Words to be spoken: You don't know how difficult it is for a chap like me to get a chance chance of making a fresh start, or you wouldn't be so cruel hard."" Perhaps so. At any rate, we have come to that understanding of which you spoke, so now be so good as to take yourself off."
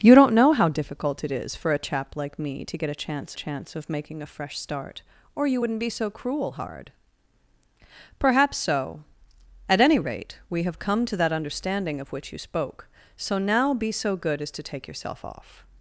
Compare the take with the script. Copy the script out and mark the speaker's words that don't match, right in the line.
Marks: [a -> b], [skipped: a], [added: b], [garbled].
You don't know how difficult it is for a chap like me to get a chance chance of making a fresh start, or you wouldn't be so cruel hard."" Perhaps so. At any rate, we have come to that understanding of which you spoke, so now be so good as to take yourself off."